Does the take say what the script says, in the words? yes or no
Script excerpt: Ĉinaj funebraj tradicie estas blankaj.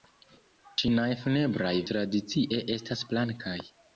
yes